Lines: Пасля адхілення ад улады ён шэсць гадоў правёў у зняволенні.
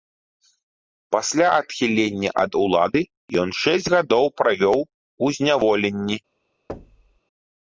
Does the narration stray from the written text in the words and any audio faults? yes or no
yes